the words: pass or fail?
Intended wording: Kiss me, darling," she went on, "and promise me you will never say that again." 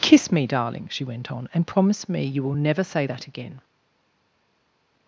pass